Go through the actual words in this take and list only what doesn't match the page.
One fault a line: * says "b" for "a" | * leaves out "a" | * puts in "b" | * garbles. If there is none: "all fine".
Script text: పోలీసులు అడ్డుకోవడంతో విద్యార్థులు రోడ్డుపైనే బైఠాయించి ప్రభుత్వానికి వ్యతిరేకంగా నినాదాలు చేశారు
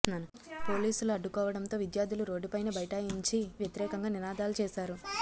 * leaves out "ప్రభుత్వానికి"